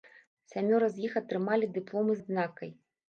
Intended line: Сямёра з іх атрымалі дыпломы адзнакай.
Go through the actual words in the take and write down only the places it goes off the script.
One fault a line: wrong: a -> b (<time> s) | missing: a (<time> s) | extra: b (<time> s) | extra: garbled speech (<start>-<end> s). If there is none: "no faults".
no faults